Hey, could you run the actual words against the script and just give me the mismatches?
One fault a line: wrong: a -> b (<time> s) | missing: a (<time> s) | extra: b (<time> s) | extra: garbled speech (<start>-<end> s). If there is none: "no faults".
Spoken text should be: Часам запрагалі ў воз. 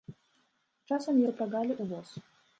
no faults